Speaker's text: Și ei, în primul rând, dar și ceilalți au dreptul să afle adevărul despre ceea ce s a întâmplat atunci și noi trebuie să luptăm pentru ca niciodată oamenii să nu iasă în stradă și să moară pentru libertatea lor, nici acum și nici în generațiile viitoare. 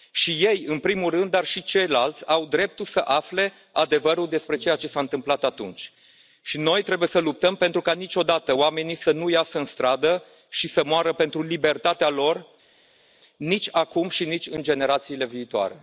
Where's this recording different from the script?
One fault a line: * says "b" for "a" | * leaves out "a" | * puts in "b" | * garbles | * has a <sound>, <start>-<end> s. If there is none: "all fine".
all fine